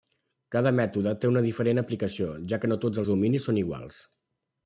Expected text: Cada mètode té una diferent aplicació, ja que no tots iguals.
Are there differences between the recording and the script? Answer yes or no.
yes